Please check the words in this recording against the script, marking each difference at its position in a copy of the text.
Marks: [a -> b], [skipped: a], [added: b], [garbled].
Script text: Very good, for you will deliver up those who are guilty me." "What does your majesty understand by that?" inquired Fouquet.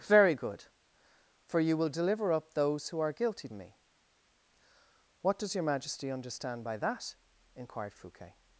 Very good, for you will deliver up those who are guilty me." "What does your majesty understand by that?" inquired Fouquet.